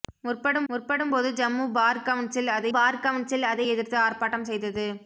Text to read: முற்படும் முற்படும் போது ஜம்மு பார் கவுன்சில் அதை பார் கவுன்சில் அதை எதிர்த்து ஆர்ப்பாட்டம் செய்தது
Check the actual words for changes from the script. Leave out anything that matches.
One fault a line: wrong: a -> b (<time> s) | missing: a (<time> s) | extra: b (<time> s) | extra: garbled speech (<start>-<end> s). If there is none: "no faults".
no faults